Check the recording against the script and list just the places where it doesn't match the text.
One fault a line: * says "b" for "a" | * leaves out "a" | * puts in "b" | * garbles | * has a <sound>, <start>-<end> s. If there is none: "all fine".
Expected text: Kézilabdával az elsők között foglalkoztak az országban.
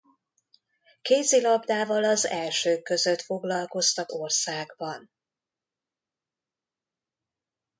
* leaves out "az"